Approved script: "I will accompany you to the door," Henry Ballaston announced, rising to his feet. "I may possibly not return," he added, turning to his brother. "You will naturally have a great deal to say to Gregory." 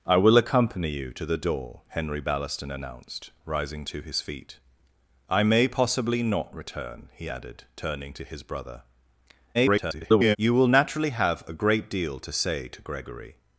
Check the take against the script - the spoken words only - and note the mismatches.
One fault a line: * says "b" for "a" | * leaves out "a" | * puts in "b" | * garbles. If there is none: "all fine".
* garbles